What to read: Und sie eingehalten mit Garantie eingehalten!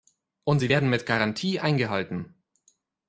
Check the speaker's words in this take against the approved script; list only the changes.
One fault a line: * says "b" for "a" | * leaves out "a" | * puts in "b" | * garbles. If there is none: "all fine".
* says "werden" for "eingehalten"